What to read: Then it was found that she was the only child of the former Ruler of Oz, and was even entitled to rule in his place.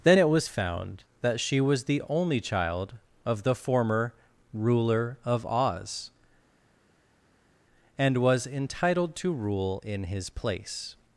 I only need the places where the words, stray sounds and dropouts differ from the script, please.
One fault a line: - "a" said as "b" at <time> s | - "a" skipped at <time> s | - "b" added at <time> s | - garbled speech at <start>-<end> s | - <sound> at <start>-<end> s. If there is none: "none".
- "even" skipped at 8.5 s